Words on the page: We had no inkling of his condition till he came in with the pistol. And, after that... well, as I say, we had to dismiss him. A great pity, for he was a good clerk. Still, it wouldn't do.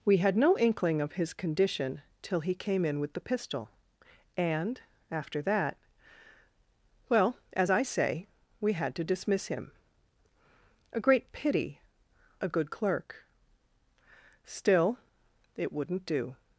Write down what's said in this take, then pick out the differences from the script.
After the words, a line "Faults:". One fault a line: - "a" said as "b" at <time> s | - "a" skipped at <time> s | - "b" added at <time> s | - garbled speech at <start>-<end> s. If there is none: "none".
We had no inkling of his condition till he came in with the pistol. And, after that... well, as I say, we had to dismiss him. A great pity, a good clerk. Still, it wouldn't do.
Faults:
- "for he was" skipped at 11.8 s